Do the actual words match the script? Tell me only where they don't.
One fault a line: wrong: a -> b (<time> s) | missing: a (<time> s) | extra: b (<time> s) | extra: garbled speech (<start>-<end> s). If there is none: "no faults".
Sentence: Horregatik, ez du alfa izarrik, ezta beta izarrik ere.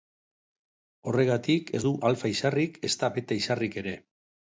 no faults